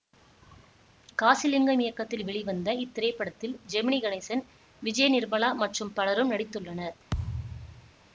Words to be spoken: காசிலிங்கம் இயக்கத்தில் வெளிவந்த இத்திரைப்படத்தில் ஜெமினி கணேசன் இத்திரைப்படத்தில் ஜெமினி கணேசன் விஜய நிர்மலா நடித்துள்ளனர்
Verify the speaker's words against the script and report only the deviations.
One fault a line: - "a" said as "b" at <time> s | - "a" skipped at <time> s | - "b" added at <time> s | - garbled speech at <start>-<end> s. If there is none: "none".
- "இத்திரைப்படத்தில் ஜெமினி கணேசன் விஜய நிர்மலா" said as "விஜய நிர்மலா மற்றும் பலரும்" at 4.8 s